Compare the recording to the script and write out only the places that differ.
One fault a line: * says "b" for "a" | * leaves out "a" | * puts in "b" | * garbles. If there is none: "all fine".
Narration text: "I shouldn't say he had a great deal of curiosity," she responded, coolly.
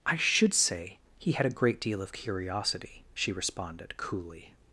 * says "should" for "shouldn't"